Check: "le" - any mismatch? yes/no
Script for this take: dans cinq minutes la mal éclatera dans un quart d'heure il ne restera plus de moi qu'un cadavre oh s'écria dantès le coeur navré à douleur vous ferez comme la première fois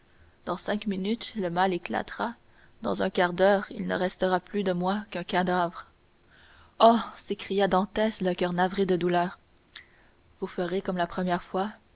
no